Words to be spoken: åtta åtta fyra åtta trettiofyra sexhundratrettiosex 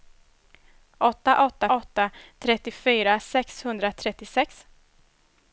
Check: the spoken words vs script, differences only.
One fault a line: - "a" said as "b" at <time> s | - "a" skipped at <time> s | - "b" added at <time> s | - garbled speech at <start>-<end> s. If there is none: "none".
- "fyra" skipped at 1.7 s